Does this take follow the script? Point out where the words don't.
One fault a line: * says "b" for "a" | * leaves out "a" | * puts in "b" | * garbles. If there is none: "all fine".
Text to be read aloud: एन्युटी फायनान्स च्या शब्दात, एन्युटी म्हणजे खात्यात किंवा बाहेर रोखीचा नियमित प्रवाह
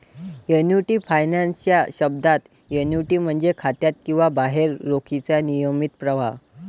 all fine